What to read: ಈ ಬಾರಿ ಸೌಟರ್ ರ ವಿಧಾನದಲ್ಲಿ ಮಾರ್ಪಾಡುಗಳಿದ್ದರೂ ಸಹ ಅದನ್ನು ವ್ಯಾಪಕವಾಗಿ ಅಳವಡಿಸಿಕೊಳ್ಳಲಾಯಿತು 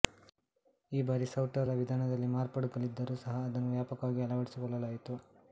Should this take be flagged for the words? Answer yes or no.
no